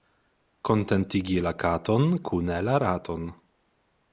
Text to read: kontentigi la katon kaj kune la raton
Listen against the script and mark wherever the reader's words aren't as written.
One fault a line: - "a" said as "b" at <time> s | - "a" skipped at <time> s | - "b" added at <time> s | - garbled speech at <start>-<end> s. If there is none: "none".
- "kaj" skipped at 2.1 s